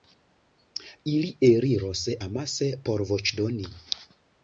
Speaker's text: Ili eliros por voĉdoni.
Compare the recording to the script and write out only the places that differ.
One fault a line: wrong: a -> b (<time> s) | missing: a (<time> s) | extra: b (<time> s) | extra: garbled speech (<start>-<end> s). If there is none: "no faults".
extra: amase (2.3 s)